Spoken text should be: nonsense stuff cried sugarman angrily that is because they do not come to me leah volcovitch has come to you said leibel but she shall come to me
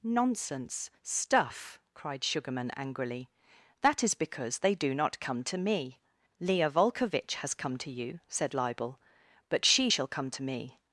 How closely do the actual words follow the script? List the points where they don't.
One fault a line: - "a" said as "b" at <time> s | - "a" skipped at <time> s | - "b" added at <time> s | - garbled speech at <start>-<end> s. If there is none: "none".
none